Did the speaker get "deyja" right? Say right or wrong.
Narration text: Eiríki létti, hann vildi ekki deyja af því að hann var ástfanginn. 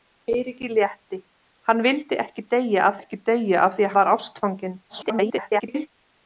right